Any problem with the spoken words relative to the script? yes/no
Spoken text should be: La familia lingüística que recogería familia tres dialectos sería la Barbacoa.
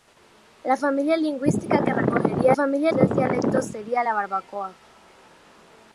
no